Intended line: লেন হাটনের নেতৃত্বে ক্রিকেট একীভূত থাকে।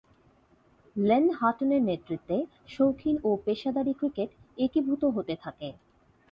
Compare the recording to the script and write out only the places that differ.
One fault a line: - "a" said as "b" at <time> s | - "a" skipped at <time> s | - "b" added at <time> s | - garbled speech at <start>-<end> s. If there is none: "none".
- "শৌখিন ও পেশাদারী" added at 2.7 s
- "হতে" added at 5.2 s